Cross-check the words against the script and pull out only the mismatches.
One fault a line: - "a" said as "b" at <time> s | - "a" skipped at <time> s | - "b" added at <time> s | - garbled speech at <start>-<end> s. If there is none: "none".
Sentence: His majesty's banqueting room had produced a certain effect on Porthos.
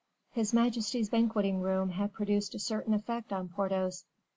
none